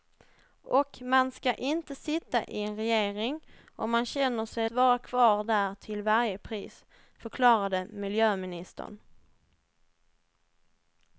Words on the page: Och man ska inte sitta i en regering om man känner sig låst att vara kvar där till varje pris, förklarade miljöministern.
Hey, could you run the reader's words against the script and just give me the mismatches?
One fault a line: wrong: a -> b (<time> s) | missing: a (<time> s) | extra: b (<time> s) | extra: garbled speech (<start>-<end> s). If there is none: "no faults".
missing: låst att (4.7 s)